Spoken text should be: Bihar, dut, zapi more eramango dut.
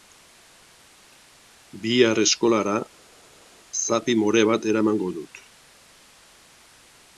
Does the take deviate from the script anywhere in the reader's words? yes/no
yes